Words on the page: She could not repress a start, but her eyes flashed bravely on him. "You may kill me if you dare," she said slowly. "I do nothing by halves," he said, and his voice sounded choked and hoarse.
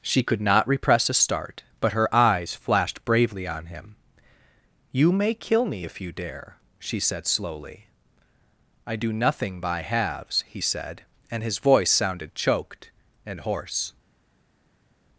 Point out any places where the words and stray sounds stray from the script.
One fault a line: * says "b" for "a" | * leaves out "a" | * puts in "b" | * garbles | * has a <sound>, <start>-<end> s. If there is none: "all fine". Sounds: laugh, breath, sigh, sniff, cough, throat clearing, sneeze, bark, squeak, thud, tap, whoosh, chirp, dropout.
all fine